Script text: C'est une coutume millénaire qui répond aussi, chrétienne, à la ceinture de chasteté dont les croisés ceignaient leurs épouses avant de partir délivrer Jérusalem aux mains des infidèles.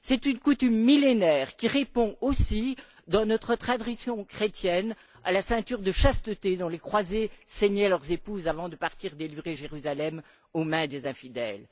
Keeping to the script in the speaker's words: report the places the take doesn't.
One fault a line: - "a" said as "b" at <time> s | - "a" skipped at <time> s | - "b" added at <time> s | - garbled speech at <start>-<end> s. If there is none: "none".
- "dans notre tradition" added at 3.1 s